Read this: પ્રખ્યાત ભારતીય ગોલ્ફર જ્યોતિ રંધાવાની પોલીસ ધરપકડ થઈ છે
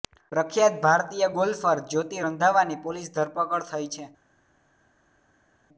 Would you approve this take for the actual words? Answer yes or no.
yes